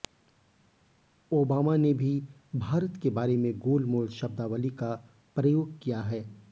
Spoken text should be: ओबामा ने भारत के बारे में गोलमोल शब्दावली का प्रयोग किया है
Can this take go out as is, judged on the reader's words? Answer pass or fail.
fail